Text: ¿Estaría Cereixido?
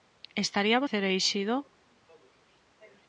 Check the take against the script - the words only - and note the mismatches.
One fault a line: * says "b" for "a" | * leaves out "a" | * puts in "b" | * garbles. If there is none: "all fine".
all fine